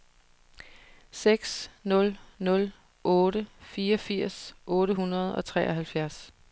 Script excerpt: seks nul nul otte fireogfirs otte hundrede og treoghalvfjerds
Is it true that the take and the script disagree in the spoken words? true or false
false